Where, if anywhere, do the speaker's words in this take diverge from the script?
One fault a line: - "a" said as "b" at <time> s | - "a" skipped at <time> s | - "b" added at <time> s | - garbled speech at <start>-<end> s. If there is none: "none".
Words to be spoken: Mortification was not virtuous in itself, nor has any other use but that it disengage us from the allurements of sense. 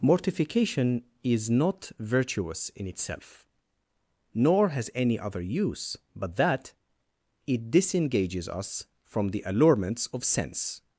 - "was" said as "is" at 1.2 s
- "disengage" said as "disengages" at 7.7 s